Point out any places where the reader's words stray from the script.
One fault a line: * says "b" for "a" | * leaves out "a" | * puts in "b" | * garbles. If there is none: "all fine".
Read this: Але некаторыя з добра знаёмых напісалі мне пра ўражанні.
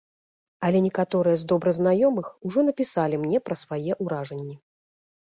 * puts in "ужо"
* puts in "свае"